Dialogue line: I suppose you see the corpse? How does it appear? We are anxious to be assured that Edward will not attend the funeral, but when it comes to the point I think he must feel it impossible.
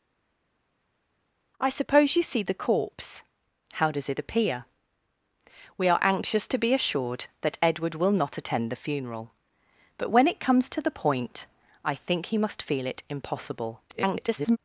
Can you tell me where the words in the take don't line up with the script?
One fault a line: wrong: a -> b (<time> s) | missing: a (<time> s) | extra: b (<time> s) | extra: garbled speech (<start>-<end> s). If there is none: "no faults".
extra: garbled speech (13.9-14.6 s)